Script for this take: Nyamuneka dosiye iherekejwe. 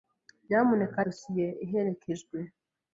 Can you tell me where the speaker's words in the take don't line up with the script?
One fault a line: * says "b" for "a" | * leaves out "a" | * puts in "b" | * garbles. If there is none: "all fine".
all fine